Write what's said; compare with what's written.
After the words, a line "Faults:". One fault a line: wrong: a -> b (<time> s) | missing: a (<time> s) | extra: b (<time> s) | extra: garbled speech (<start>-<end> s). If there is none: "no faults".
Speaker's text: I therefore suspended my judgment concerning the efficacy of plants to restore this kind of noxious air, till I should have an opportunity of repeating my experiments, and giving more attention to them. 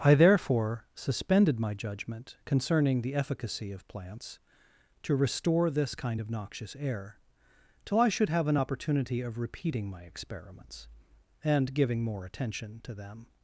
I therefore suspended my judgment concerning the efficacy of plants to restore this kind of noxious air, till I should have an opportunity of repeating my experiments, and giving more attention to them.
Faults:
no faults